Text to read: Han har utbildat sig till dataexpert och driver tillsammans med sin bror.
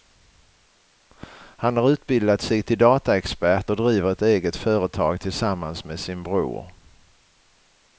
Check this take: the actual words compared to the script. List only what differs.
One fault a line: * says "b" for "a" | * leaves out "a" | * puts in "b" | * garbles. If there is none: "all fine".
* puts in "ett eget företag"